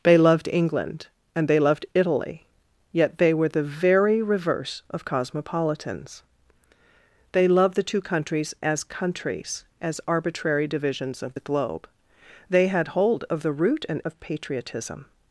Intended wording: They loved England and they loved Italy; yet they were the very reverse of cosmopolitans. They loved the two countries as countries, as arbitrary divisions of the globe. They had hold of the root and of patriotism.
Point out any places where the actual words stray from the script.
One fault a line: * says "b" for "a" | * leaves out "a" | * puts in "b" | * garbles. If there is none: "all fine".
all fine